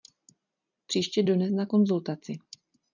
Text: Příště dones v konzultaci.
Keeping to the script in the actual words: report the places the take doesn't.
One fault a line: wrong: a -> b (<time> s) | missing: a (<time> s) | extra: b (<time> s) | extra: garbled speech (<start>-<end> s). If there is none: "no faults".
wrong: v -> na (1.5 s)